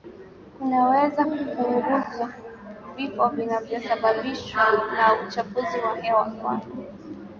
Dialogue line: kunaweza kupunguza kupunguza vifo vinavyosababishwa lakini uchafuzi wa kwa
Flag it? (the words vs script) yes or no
yes